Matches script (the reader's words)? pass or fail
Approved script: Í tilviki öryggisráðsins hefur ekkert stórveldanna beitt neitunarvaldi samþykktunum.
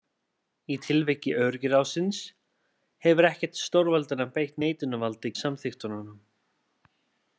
pass